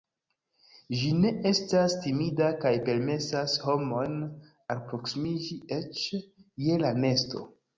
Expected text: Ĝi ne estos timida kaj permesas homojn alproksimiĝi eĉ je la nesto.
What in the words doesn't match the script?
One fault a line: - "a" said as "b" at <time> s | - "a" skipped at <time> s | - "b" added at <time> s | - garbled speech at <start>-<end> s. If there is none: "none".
- "estos" said as "estas" at 1.5 s